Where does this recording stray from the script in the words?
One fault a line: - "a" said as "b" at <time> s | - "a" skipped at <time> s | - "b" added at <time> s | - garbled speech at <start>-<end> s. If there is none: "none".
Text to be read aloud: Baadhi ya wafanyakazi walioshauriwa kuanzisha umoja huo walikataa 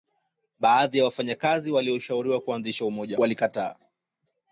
- "huo" skipped at 3.2 s